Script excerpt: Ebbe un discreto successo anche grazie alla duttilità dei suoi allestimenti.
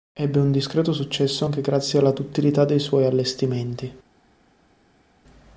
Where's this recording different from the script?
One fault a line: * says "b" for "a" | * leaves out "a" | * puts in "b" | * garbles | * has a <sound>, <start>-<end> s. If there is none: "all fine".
all fine